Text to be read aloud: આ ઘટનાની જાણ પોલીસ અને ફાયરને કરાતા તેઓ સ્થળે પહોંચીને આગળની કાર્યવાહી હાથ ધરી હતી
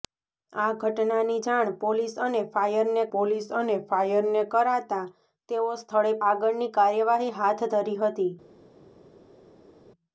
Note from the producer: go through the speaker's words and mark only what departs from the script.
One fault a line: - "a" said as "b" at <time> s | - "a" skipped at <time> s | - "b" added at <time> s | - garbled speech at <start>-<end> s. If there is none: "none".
- "પોલીસ અને ફાયરને" added at 3.1 s
- "પહોંચીને" skipped at 6.2 s